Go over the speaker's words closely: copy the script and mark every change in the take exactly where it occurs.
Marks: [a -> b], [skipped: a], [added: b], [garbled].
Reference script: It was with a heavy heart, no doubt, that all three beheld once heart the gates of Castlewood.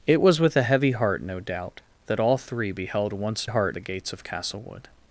It was with a heavy heart, no doubt, that all three beheld once heart the gates of Castlewood.